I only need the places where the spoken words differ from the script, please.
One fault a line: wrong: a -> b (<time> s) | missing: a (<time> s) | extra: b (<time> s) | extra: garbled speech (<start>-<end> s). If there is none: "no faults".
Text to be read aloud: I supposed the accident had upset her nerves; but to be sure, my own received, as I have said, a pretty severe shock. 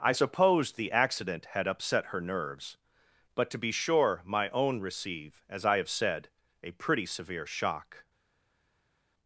wrong: received -> receive (4.8 s)